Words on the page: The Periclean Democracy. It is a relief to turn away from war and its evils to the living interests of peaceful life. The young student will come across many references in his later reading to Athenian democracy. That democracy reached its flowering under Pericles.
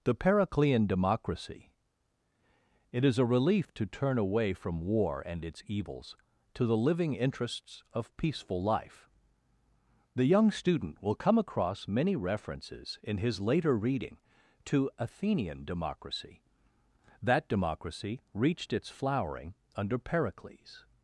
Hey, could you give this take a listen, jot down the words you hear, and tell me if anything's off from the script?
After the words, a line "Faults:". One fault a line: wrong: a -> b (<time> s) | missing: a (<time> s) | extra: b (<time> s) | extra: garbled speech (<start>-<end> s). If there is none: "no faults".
The Periclean Democracy. It is a relief to turn away from war and its evils to the living interests of peaceful life. The young student will come across many references in his later reading to Athenian democracy. That democracy reached its flowering under Pericles.
Faults:
no faults